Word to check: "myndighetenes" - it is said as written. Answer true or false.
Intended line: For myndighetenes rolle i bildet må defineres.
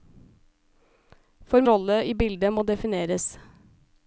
false